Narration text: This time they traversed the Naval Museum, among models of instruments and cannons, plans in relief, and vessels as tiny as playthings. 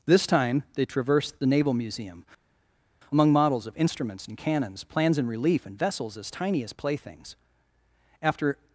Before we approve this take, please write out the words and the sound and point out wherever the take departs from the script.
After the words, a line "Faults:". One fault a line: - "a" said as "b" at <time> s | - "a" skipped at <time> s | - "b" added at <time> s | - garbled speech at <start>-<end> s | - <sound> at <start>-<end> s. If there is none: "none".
This time they traversed the Naval Museum, among models of instruments and cannons, plans in relief, and vessels as tiny as playthings. After
Faults:
- "After" added at 8.2 s